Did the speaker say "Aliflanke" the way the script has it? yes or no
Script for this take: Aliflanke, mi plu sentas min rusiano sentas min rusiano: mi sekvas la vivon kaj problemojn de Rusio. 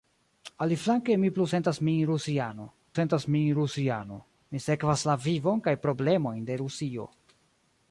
yes